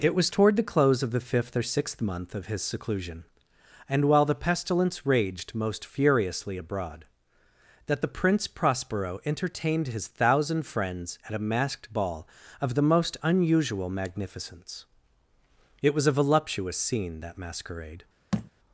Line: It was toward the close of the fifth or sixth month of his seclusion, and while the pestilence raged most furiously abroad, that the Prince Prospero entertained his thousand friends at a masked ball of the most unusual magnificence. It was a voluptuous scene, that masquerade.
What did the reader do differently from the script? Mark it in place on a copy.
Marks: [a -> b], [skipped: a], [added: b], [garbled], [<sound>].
It was toward the close of the fifth or sixth month of his seclusion, and while the pestilence raged most furiously abroad, that the Prince Prospero entertained his thousand friends at a masked ball of the most unusual magnificence. It was a voluptuous scene, that masquerade. [thud]